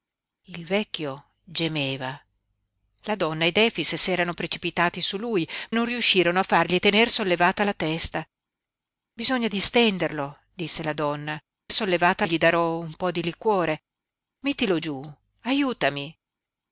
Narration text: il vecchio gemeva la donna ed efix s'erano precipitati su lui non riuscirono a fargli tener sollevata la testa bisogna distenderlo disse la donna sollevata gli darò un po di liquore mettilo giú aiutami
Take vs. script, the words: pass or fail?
pass